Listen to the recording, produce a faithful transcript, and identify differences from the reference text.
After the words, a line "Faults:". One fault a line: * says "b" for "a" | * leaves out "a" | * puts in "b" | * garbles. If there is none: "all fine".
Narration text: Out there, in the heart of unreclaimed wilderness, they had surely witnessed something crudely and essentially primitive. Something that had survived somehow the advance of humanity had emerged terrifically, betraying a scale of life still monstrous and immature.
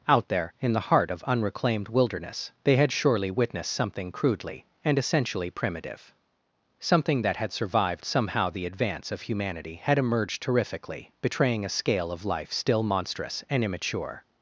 Out there, in the heart of unreclaimed wilderness, they had surely witnessed something crudely and essentially primitive. Something that had survived somehow the advance of humanity had emerged terrifically, betraying a scale of life still monstrous and immature.
Faults:
all fine